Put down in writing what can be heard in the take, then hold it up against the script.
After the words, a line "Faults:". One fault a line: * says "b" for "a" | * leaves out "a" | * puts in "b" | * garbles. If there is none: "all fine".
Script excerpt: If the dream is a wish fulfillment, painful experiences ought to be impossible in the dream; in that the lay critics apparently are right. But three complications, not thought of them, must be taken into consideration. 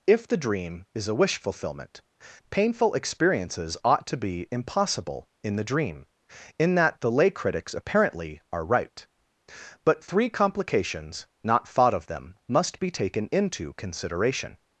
If the dream is a wish fulfillment, painful experiences ought to be impossible in the dream; in that the lay critics apparently are right. But three complications, not thought of them, must be taken into consideration.
Faults:
all fine